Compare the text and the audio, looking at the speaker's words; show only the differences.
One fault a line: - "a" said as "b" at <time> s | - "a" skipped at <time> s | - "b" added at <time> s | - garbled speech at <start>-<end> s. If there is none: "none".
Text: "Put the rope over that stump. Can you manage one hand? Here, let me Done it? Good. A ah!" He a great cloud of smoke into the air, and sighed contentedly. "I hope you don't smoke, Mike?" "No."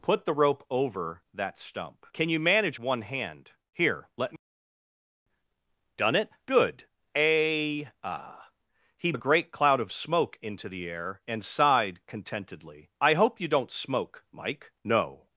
none